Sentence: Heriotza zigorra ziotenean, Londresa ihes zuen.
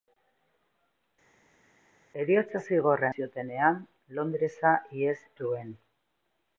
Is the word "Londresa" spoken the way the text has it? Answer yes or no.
yes